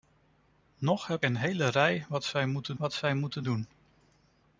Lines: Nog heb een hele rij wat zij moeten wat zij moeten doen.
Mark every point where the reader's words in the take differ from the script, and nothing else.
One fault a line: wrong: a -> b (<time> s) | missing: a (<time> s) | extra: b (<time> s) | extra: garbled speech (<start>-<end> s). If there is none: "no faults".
no faults